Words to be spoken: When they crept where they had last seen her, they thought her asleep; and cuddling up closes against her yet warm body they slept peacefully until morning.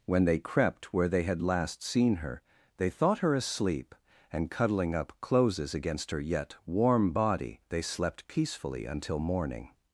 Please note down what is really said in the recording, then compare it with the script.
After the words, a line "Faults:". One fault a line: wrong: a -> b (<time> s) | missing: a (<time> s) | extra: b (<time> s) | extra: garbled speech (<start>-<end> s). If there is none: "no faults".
When they crept where they had last seen her, they thought her asleep; and cuddling up closes against her yet warm body they slept peacefully until morning.
Faults:
no faults